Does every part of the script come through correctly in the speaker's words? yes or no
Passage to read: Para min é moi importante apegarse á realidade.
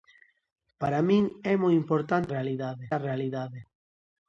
no